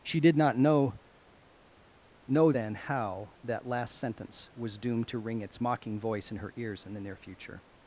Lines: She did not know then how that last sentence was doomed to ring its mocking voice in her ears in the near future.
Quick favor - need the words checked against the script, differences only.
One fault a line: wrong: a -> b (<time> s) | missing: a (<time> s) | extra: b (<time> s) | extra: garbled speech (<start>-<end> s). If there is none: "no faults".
extra: know (2.3 s)